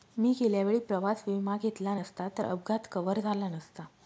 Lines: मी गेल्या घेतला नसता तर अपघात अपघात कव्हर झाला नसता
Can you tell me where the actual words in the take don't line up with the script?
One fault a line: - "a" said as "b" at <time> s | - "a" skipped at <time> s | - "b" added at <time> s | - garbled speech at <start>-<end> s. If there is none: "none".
- "वेळी प्रवास विमा" added at 0.6 s
- "अपघात" skipped at 2.9 s